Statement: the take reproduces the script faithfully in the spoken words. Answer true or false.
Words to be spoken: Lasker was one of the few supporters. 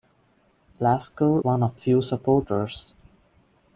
false